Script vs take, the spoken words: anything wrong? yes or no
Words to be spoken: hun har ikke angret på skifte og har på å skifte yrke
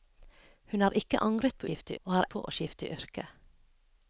no